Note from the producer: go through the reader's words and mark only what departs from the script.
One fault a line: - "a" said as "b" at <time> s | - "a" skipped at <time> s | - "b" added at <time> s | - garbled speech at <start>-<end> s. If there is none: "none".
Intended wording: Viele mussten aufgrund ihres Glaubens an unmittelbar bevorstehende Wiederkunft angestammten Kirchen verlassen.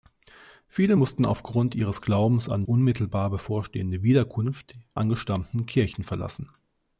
none